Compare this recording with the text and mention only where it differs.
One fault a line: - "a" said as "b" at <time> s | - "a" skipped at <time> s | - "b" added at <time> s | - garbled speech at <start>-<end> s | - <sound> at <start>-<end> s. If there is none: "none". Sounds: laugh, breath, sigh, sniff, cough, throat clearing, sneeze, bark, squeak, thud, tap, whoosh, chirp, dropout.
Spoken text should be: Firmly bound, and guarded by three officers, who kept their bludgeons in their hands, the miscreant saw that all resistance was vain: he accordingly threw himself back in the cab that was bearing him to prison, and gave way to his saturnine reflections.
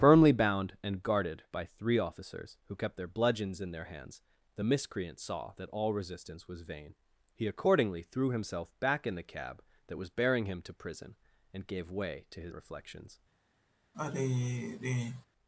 - "saturnine" skipped at 12.5 s
- sigh at 13.9-15.3 s